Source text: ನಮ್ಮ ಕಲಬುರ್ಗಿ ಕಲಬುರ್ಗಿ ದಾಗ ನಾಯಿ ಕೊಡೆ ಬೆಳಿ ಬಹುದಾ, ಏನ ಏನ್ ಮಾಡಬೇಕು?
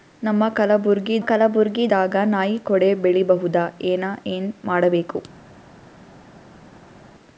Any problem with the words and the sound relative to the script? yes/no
no